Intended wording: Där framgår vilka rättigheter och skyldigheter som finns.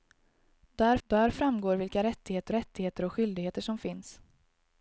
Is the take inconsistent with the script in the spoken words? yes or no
yes